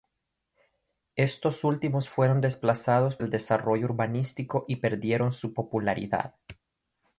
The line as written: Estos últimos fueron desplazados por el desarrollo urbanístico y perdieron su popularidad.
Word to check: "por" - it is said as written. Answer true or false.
false